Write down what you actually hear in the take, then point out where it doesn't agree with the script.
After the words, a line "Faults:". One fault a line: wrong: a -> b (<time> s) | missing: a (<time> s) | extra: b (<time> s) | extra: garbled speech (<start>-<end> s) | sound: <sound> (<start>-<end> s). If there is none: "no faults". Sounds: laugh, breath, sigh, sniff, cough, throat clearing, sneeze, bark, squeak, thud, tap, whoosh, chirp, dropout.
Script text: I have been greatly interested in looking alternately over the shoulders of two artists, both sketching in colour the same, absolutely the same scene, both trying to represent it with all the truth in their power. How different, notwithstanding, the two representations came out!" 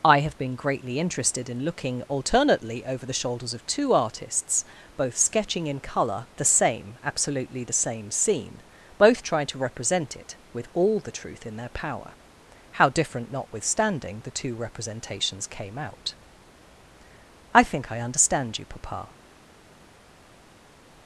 I have been greatly interested in looking alternately over the shoulders of two artists, both sketching in colour the same, absolutely the same scene, both trying to represent it with all the truth in their power. How different, notwithstanding, the two representations came out!" "I think I understand you, papa
Faults:
extra: I think I understand you papa (17.5 s)